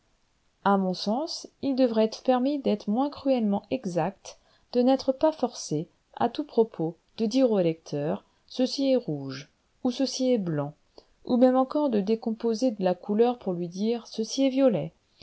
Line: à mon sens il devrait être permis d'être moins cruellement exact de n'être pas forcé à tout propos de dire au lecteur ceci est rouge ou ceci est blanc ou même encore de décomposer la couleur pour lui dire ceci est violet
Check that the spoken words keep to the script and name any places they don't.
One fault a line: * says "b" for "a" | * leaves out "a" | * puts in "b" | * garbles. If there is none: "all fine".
all fine